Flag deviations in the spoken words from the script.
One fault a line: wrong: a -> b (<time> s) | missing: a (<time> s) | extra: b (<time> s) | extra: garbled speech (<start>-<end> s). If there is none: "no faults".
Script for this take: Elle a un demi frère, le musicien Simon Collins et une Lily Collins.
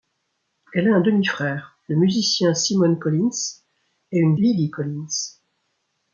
no faults